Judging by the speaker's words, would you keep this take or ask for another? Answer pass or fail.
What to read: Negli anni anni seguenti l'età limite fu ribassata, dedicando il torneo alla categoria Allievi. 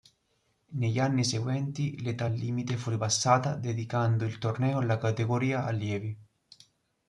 fail